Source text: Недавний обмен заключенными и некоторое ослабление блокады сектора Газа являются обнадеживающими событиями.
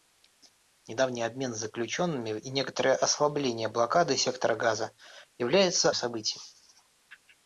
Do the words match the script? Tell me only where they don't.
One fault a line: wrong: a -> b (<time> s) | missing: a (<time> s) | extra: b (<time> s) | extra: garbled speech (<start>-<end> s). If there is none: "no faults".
missing: обнадеживающими (5.9 s)